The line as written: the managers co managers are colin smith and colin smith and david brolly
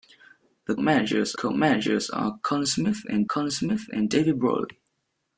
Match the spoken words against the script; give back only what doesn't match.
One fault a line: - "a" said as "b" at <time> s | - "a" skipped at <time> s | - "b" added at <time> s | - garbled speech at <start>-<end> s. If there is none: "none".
none